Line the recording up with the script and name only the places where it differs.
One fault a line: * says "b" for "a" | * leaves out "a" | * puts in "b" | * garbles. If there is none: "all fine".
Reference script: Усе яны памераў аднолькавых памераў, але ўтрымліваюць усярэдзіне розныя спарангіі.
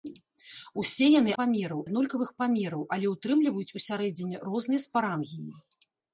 all fine